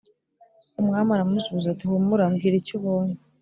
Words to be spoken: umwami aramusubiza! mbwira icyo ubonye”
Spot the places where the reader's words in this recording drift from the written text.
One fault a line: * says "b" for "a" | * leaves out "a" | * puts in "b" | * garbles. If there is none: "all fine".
* puts in "ati humura"